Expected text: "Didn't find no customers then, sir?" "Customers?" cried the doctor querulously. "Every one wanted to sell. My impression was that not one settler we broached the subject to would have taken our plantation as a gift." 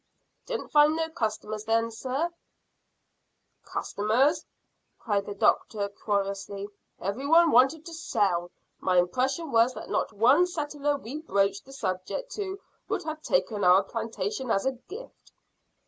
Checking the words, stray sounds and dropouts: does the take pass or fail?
pass